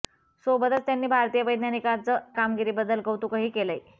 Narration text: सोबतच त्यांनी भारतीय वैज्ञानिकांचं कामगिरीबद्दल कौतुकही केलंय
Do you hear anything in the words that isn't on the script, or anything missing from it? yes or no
no